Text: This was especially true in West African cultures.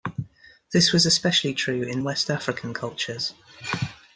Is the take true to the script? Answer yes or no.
yes